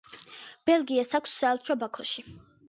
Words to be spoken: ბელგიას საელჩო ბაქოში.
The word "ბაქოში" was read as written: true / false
true